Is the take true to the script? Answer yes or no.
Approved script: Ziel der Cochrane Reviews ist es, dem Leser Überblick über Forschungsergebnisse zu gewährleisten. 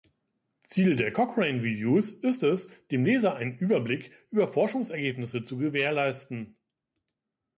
no